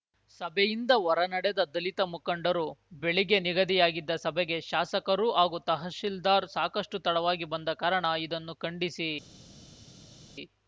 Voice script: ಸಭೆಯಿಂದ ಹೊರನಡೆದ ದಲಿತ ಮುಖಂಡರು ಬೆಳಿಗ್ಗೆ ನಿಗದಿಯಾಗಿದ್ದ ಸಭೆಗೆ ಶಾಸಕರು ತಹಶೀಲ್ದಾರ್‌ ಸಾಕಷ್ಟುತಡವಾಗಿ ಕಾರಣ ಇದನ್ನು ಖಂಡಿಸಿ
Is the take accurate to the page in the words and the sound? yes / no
no